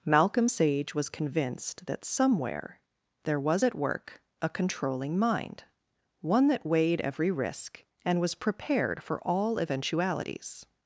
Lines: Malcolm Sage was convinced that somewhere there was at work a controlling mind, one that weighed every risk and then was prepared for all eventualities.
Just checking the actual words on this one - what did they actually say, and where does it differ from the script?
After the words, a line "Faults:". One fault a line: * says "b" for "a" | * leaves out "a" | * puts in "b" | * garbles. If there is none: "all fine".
Malcolm Sage was convinced that somewhere there was at work a controlling mind, one that weighed every risk and was prepared for all eventualities.
Faults:
* leaves out "then"